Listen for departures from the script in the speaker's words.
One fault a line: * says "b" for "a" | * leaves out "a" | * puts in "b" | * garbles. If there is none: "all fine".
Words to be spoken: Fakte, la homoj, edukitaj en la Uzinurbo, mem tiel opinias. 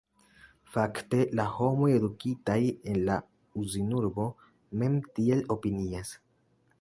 all fine